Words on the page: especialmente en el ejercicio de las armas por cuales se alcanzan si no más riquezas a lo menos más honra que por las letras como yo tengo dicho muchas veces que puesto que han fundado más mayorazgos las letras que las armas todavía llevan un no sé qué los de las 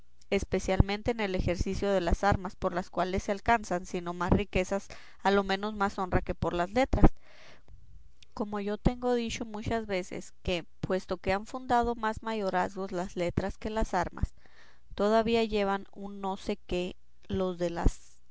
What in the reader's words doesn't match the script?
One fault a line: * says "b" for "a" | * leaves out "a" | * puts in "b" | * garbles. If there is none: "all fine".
* puts in "las"